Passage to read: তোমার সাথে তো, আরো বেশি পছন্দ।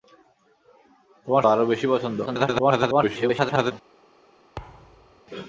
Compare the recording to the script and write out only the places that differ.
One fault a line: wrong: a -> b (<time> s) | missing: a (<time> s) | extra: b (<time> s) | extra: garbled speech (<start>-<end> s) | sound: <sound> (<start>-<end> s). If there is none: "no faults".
missing: সাথে তো (1.4 s)
extra: garbled speech (2.3-3.7 s)
sound: thud (4.6-5.2 s)